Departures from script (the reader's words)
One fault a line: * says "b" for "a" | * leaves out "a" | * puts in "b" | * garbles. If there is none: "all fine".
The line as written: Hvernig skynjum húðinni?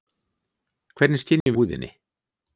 all fine